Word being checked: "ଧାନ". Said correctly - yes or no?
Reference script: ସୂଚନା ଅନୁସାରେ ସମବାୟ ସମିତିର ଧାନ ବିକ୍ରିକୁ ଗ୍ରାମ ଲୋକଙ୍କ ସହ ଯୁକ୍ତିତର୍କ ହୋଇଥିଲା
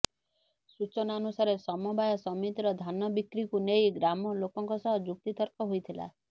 yes